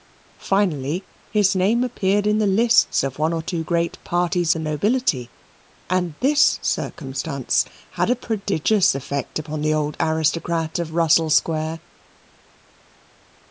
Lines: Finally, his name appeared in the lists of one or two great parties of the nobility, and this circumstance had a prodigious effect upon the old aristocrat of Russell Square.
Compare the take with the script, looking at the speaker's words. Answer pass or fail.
fail